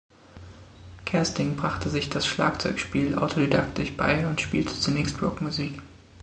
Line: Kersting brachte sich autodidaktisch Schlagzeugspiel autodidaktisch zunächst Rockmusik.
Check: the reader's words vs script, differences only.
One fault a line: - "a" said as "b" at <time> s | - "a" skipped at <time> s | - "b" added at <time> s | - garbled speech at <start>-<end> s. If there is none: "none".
- "autodidaktisch" said as "das" at 2.1 s
- "bei und spielte" added at 4.0 s